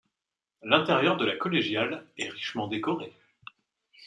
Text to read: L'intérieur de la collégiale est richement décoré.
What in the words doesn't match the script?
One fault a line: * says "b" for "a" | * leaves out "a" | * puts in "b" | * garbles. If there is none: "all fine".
all fine